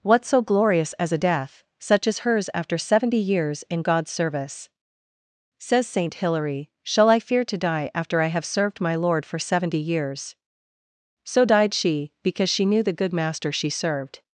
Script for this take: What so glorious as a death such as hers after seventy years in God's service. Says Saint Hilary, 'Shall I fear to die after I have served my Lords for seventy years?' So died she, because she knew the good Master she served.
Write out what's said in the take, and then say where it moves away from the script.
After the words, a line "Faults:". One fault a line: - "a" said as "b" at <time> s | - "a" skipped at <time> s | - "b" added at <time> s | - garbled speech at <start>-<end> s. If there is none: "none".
What so glorious as a death such as hers after seventy years in God's service. Says Saint Hilary, 'Shall I fear to die after I have served my Lord for seventy years?' So died she, because she knew the good Master she served.
Faults:
- "Lords" said as "Lord" at 8.9 s